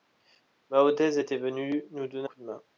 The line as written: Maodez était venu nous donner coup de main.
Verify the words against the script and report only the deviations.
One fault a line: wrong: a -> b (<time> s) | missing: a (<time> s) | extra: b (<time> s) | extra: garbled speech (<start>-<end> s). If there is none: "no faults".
no faults